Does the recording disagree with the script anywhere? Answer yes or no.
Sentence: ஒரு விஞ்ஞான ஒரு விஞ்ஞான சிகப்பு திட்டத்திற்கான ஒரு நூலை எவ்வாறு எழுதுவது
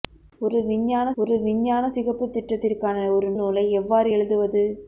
no